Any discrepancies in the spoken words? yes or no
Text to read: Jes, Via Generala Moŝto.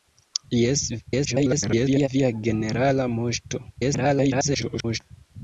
yes